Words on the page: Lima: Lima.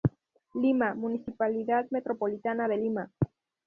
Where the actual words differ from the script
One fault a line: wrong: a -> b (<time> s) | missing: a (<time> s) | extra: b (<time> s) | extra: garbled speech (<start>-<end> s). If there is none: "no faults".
extra: Municipalidad Metropolitana de (0.9 s)